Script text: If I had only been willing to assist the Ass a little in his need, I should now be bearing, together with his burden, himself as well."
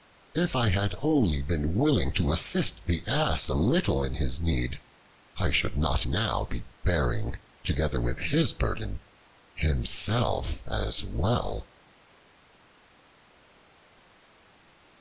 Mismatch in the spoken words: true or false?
true